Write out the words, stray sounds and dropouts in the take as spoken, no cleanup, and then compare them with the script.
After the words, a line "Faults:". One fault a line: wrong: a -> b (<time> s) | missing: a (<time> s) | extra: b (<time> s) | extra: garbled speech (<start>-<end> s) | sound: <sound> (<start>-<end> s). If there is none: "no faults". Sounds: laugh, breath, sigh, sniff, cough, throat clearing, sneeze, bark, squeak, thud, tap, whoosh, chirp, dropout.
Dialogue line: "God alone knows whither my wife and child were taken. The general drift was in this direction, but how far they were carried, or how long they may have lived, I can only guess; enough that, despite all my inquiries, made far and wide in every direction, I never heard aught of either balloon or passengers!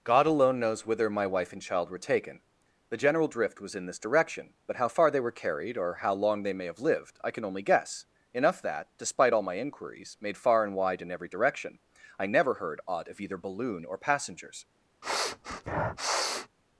"God alone knows whither my wife and child were taken. The general drift was in this direction, but how far they were carried, or how long they may have lived, I can only guess; enough that, despite all my inquiries, made far and wide in every direction, I never heard aught of either balloon or passengers!
Faults:
sound: sniff (15.0-16.5 s)